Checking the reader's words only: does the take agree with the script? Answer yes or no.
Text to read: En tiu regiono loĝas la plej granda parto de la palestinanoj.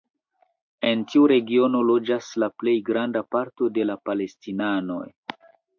yes